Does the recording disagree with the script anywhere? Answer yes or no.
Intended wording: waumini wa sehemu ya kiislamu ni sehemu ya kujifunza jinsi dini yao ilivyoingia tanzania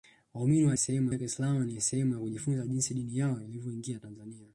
no